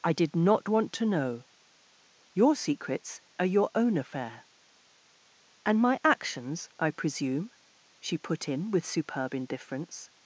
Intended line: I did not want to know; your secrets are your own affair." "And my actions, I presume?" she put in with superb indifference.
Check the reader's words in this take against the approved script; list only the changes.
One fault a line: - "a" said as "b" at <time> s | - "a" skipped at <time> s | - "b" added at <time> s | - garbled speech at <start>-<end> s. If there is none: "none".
none